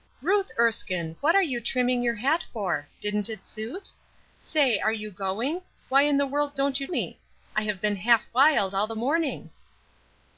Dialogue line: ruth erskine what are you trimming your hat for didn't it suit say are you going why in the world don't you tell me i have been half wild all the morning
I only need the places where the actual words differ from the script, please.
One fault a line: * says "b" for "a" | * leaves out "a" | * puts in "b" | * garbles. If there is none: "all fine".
* leaves out "tell"